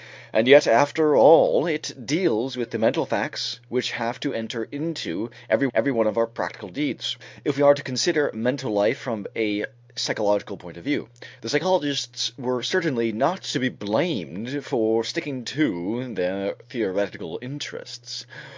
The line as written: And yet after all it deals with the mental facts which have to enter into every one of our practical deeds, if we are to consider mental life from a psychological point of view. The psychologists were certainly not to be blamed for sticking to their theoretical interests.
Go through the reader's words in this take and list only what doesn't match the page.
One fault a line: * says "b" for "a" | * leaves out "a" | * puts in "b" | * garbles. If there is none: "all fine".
* puts in "every"